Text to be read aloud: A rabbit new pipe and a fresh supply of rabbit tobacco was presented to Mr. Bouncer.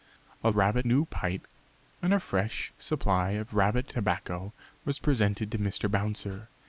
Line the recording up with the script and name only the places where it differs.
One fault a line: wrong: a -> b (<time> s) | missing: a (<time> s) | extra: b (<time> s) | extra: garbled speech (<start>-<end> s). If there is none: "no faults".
no faults